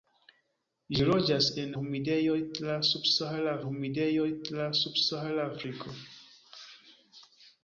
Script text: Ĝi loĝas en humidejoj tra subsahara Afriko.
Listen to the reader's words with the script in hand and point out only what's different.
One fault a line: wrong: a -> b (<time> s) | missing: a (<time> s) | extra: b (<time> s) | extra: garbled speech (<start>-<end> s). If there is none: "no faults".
extra: humidejoj tra subsahara (3.7 s)